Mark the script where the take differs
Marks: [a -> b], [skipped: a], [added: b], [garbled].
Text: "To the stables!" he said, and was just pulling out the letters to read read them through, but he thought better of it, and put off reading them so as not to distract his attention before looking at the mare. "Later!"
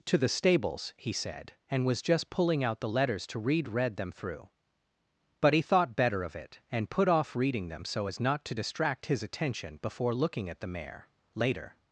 "To the stables!" he said, and was just pulling out the letters to read read them through, but he thought better of it, and put off reading them so as not to distract his attention before looking at the mare. "Later!"